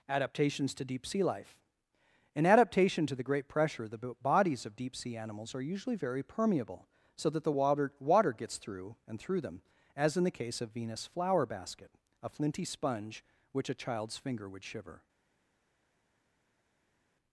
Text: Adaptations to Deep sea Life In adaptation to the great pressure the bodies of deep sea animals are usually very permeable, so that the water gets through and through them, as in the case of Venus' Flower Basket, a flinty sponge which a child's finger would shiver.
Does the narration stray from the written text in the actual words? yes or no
yes